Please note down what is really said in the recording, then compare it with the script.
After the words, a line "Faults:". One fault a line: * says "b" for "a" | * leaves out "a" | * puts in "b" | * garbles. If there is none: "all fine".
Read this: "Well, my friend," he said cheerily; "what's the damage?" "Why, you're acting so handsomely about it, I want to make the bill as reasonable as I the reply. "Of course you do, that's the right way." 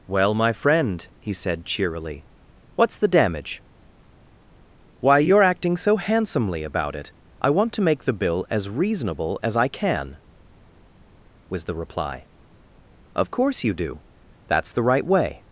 "Well, my friend," he said cheerily; "what's the damage?" "Why, you're acting so handsomely about it, I want to make the bill as reasonable as I can," was the reply. "Of course you do, that's the right way."
Faults:
* puts in "can was"